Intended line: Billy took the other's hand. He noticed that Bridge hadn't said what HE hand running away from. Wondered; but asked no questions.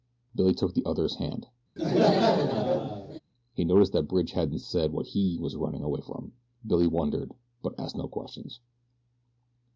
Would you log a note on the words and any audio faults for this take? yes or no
yes